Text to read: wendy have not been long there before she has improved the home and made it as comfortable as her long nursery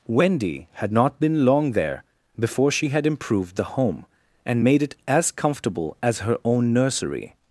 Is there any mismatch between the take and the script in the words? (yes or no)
yes